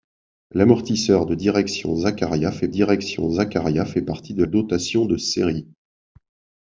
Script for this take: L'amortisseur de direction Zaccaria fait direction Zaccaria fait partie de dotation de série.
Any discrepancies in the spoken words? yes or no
no